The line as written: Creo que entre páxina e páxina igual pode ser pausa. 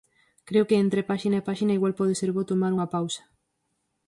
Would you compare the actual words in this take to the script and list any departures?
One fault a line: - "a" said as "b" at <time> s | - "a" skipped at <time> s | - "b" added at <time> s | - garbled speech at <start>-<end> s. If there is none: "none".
- "bo tomar unha" added at 2.4 s